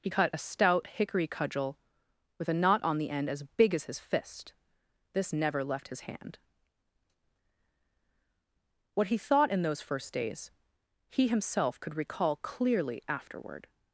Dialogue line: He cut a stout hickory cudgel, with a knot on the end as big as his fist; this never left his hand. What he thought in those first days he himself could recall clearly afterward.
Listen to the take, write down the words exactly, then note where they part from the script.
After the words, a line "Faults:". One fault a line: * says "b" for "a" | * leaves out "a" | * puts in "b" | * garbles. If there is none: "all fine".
He cut a stout hickory cudgel, with a knot on the end as big as his fist; this never left his hand. What he thought in those first days he himself could recall clearly afterward.
Faults:
all fine